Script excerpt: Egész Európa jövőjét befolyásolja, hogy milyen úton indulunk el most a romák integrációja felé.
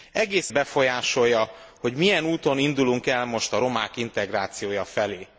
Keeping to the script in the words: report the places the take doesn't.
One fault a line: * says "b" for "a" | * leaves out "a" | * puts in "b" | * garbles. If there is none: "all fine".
* leaves out "Európa jövőjét"